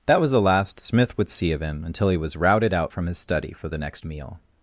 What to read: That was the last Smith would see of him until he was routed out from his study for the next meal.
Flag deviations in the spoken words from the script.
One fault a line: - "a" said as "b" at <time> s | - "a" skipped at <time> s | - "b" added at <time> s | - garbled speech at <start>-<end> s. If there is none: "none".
none